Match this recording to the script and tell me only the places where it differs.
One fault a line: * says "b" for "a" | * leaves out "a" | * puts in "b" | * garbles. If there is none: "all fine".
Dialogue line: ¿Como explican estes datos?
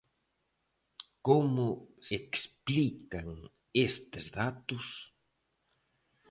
all fine